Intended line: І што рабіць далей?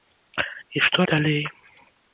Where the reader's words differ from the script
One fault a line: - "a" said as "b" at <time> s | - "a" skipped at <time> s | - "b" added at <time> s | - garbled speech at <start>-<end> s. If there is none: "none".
- "рабіць" skipped at 1.0 s